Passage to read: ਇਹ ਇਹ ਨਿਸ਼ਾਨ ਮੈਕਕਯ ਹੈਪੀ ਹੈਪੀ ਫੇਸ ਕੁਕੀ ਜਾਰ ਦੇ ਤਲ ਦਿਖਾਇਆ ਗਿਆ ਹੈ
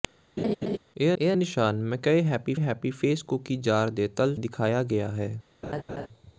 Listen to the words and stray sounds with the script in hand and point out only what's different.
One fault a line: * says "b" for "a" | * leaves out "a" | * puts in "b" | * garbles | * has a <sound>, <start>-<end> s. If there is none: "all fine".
* has a laugh, 0.4-0.8 s
* has a laugh, 5.6-6.1 s